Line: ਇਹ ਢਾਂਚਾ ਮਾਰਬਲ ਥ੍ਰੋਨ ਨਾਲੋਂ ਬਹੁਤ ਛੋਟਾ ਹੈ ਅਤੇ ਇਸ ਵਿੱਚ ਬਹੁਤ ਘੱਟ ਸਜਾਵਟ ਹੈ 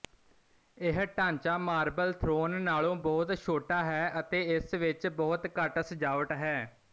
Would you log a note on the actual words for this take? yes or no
no